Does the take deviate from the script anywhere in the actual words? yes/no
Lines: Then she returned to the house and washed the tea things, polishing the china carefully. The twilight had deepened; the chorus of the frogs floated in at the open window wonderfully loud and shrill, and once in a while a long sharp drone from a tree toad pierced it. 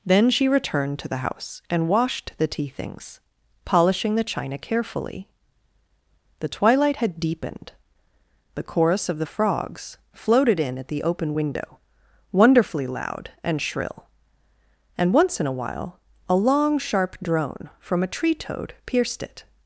no